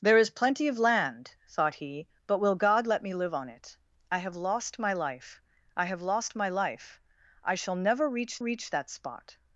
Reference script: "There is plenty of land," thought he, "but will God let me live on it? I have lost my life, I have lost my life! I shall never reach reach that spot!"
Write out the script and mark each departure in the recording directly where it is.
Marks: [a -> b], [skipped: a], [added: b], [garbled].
"There is plenty of land," thought he, "but will God let me live on it? I have lost my life, I have lost my life! I shall never reach reach that spot!"